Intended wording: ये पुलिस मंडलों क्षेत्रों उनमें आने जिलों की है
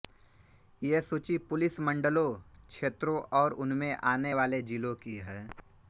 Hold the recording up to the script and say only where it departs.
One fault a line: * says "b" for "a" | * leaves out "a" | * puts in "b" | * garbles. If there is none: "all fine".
* puts in "सूची"
* puts in "और"
* puts in "वाले"